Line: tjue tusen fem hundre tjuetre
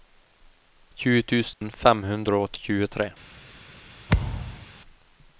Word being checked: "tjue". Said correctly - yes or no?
yes